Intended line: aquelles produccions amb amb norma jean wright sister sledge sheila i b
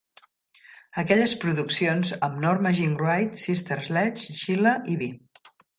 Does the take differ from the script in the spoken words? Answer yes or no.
yes